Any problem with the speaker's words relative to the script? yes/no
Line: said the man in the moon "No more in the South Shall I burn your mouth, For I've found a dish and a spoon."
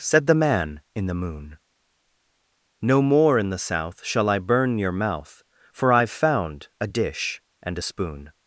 no